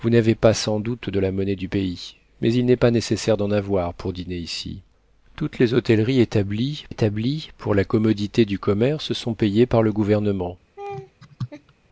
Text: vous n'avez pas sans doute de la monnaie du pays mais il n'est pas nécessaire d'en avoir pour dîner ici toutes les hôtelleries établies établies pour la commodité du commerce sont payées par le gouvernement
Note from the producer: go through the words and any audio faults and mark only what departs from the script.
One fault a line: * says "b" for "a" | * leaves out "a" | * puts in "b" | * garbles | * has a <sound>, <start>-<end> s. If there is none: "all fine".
* has a laugh, 10.8-11.7 s